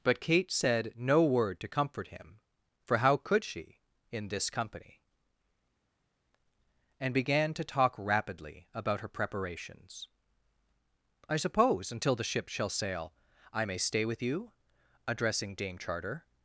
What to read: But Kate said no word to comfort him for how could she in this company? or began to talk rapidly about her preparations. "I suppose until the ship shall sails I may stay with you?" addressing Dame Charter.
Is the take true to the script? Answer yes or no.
no